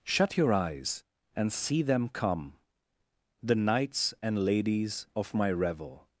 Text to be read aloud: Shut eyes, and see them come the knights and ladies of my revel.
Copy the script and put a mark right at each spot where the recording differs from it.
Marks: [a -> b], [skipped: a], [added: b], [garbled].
Shut [added: your] eyes, and see them come the knights and ladies of my revel.